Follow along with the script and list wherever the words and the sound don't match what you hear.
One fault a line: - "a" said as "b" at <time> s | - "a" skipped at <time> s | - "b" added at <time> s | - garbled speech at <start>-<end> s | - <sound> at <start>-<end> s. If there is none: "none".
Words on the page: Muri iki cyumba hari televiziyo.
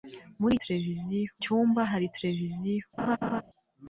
- "iki" said as "televiziyo" at 0.6 s
- laugh at 3.0-3.4 s